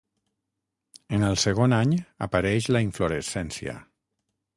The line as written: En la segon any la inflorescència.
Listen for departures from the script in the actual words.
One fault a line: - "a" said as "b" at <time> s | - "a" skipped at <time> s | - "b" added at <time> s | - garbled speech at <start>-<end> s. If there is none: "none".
- "la" said as "el" at 1.3 s
- "apareix" added at 2.3 s